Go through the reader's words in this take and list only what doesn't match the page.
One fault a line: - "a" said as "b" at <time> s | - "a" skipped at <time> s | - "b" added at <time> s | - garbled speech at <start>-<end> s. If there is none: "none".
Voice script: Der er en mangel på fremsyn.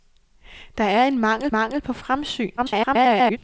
- "mangel" added at 1.5 s
- garbled speech at 2.6-3.4 s